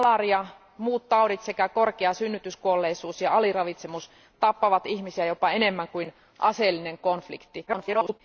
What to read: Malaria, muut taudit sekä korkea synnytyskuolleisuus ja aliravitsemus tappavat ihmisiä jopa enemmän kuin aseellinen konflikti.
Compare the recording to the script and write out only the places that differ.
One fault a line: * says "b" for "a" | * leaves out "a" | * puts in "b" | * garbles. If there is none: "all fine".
* garbles